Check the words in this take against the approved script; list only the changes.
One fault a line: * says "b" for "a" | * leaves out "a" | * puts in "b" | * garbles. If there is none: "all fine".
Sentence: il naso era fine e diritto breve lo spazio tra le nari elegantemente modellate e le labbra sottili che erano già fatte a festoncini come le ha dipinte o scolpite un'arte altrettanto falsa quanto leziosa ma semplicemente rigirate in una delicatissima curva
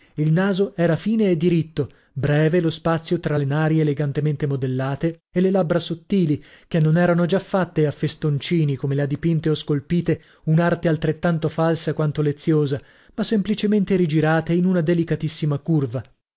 * puts in "non"